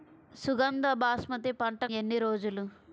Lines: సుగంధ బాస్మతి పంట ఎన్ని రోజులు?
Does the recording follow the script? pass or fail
pass